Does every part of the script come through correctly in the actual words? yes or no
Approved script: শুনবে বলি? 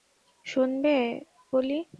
yes